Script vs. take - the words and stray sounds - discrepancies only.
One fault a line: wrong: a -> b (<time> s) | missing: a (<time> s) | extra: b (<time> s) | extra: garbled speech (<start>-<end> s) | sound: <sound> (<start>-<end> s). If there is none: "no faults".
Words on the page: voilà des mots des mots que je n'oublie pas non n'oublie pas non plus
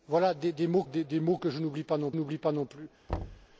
sound: thud (3.1-3.5 s)